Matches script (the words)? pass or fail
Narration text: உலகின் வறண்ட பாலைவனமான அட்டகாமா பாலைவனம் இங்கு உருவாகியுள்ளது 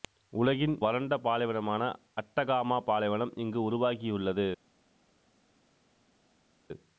pass